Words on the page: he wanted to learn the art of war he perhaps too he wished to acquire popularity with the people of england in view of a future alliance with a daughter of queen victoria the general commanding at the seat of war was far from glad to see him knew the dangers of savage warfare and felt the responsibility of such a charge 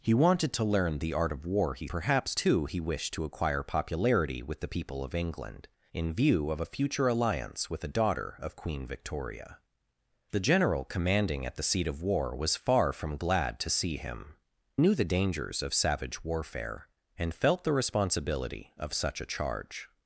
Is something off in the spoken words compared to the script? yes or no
no